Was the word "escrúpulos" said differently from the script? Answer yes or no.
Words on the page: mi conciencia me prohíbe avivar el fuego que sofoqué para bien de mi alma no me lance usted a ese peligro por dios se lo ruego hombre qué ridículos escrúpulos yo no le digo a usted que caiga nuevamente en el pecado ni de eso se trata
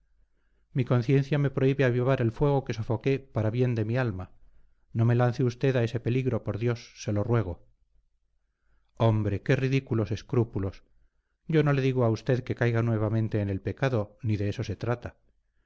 no